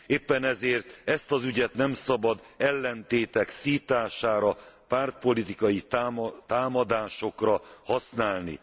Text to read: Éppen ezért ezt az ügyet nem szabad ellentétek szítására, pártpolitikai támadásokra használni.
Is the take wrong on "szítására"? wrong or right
right